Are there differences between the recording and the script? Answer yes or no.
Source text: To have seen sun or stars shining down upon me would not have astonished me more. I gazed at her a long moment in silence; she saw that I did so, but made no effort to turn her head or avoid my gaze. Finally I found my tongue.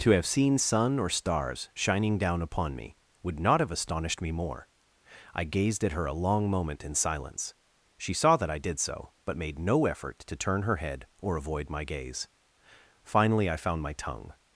no